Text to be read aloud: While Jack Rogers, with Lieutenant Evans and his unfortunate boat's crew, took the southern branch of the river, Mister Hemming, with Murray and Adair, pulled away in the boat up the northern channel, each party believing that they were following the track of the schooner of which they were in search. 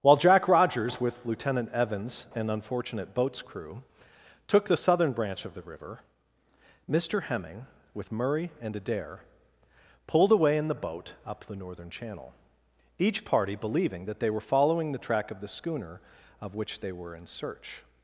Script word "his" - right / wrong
wrong